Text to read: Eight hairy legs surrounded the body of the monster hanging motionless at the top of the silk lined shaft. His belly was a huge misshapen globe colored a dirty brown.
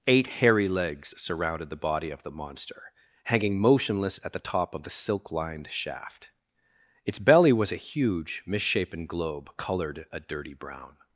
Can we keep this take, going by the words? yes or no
no